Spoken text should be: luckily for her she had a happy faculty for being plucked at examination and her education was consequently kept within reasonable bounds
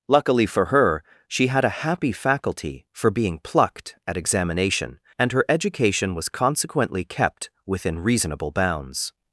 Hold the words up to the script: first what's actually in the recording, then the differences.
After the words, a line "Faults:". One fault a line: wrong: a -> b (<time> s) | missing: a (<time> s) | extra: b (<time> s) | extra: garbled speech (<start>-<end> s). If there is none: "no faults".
luckily for her she had a happy faculty for being plucked at examination and her education was consequently kept within reasonable bounds
Faults:
no faults